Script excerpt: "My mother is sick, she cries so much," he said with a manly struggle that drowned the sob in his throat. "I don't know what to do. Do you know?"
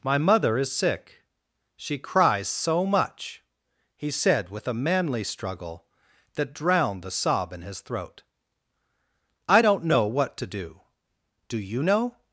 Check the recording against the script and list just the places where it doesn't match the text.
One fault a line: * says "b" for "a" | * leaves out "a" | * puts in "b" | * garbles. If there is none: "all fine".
all fine